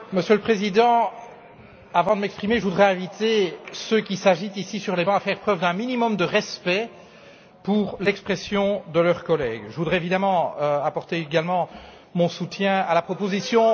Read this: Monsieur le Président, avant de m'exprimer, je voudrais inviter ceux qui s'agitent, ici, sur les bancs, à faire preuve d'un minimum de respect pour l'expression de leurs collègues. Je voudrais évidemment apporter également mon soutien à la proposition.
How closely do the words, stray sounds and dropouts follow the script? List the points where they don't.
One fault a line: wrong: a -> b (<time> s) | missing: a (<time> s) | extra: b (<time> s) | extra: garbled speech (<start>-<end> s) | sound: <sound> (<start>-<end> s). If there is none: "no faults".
no faults